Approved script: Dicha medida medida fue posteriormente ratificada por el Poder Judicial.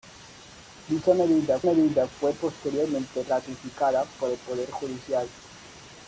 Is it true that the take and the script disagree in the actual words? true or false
false